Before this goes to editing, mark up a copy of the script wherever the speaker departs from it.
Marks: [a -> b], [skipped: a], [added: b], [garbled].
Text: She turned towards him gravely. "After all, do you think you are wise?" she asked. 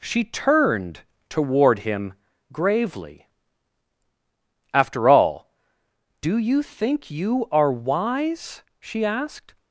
She turned [towards -> toward] him gravely. "After all, do you think you are wise?" she asked.